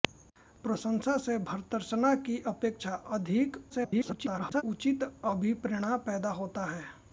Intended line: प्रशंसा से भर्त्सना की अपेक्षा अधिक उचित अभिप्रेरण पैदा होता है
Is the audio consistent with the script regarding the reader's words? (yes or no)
no